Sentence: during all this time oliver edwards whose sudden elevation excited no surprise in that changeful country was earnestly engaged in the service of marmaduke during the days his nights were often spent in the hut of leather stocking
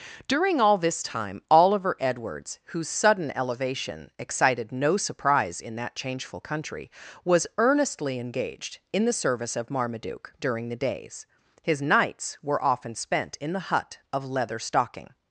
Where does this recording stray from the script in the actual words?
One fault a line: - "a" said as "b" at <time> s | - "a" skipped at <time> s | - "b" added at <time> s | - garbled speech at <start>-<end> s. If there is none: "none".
none